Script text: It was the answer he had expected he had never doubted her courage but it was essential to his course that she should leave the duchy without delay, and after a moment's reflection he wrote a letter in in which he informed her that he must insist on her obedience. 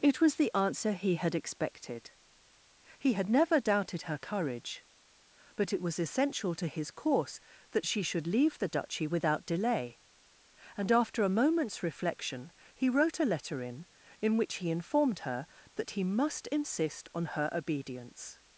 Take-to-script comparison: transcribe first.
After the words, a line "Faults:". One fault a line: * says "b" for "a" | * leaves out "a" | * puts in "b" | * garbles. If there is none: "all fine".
It was the answer he had expected he had never doubted her courage but it was essential to his course that she should leave the duchy without delay, and after a moment's reflection he wrote a letter in in which he informed her that he must insist on her obedience.
Faults:
all fine